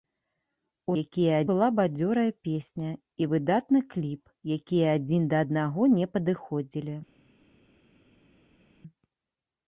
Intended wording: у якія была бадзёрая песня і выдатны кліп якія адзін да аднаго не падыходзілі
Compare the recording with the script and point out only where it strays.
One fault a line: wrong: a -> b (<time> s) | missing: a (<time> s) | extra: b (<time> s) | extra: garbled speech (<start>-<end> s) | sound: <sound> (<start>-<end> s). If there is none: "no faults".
no faults